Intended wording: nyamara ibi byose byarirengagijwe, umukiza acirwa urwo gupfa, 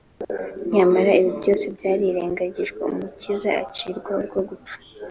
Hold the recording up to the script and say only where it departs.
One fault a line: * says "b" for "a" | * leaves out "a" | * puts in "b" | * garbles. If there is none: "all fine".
all fine